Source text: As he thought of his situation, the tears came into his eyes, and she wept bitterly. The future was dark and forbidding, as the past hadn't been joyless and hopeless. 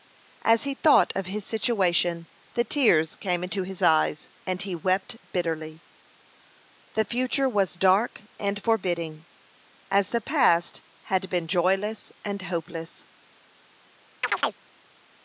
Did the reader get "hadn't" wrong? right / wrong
wrong